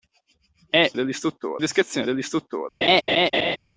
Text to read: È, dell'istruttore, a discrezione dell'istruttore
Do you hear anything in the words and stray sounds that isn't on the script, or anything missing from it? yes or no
yes